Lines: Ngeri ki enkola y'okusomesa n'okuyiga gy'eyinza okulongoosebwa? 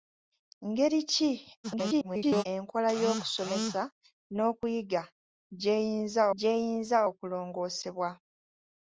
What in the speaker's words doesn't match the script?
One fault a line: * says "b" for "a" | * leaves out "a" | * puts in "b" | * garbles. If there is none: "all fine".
* garbles
* puts in "gy'eyinza"